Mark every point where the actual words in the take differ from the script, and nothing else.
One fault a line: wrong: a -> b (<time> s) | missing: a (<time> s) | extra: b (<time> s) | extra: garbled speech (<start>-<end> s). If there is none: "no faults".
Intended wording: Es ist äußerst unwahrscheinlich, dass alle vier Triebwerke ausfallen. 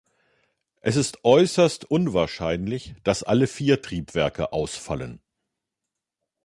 no faults